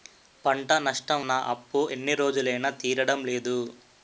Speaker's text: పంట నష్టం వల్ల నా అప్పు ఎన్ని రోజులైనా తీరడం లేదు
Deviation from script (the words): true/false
true